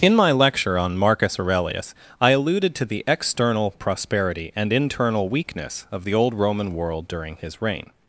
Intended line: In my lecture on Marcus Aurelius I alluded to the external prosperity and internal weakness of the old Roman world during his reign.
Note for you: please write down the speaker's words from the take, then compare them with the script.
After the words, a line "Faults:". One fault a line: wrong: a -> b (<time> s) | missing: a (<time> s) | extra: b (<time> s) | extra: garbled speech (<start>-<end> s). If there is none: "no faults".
In my lecture on Marcus Aurelius I alluded to the external prosperity and internal weakness of the old Roman world during his reign.
Faults:
no faults